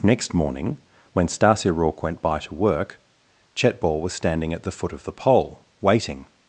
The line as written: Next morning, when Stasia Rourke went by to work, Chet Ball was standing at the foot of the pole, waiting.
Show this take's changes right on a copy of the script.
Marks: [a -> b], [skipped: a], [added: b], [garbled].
Next morning, when Stasia Rourke went by to work, Chet Ball was standing at the foot of the pole, waiting.